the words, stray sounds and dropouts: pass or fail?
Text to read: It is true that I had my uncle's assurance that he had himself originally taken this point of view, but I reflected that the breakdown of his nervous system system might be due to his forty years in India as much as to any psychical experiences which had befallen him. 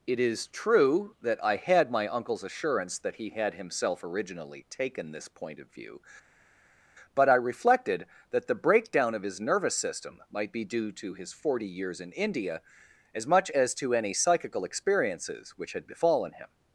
fail